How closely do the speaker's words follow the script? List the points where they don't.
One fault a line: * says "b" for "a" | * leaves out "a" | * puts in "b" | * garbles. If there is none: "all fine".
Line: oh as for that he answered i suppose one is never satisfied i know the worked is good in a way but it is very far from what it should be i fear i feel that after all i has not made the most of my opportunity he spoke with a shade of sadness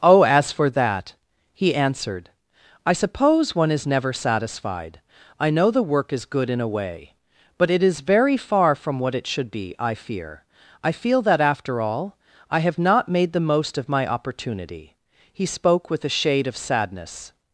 * says "work" for "worked"
* says "have" for "has"